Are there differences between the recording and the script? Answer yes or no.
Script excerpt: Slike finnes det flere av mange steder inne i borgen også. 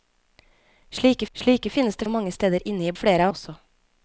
yes